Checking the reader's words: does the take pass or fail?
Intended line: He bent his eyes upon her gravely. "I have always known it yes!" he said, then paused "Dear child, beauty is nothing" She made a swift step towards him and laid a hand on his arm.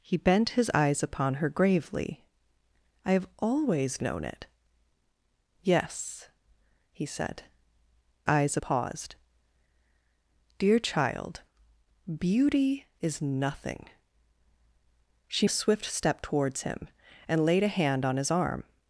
fail